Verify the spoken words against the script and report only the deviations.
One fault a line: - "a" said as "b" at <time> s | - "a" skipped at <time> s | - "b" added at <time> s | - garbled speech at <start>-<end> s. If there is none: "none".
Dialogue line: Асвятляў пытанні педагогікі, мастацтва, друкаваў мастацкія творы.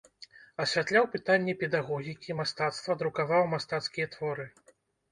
none